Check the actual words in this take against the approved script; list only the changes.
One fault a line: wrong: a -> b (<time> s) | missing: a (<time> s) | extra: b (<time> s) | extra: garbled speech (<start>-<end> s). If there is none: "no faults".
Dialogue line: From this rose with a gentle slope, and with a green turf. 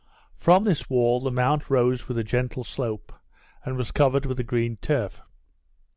extra: wall the mount (0.9 s)
extra: was covered (3.8 s)